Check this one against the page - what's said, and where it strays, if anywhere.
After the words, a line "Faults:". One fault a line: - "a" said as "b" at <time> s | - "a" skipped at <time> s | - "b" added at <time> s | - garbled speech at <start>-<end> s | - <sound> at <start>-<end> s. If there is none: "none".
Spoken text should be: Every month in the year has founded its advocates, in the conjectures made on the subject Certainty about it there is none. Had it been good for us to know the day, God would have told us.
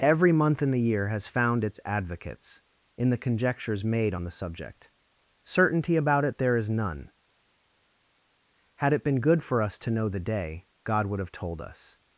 Every month in the year has found its advocates, in the conjectures made on the subject Certainty about it there is none. Had it been good for us to know the day, God would have told us.
Faults:
- "founded" said as "found" at 1.3 s